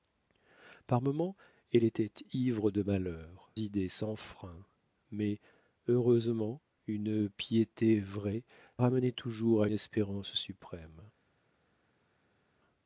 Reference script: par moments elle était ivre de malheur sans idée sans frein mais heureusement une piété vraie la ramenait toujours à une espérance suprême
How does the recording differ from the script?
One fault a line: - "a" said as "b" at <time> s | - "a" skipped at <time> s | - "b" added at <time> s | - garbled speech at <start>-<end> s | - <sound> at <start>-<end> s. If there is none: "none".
- "sans" skipped at 3.5 s
- "la" skipped at 8.4 s
- "une" skipped at 9.7 s